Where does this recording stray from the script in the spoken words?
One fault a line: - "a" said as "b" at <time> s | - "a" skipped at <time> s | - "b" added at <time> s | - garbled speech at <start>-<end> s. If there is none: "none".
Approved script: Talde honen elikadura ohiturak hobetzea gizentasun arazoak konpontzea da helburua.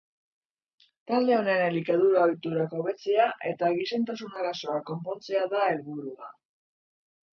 - "eta" added at 3.5 s